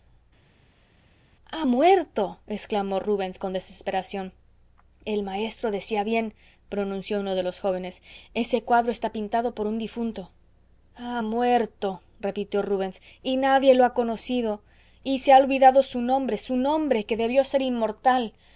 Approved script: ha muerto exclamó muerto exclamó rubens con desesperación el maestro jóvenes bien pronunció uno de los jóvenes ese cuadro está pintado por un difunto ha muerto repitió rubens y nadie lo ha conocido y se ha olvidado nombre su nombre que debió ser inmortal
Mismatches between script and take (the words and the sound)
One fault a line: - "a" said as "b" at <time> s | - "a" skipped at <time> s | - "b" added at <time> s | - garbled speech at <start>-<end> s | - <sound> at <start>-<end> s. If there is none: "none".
- "muerto exclamó" skipped at 3.0 s
- "jóvenes" said as "decía" at 5.7 s
- "su" added at 15.8 s